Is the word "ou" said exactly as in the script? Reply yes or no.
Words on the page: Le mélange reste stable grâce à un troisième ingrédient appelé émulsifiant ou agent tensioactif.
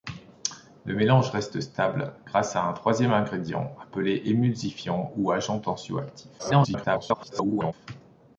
yes